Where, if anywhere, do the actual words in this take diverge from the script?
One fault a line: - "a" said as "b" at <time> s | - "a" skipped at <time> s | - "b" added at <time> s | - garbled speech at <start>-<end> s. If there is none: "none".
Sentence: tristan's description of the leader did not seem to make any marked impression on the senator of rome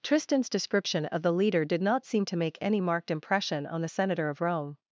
none